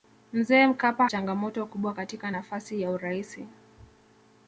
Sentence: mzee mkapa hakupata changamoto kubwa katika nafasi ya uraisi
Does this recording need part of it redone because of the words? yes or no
yes